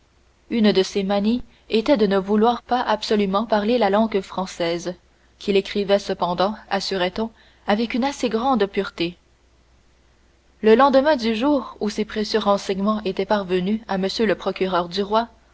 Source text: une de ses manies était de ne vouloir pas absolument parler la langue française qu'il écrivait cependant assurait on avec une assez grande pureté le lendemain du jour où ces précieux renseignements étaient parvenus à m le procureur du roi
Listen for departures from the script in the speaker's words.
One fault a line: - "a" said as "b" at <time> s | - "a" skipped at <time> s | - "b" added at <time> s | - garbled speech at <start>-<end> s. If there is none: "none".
none